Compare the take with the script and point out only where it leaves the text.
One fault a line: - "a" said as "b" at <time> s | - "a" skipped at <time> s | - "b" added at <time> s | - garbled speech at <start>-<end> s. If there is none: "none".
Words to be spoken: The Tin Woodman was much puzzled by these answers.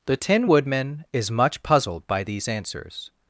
- "was" said as "is" at 1.1 s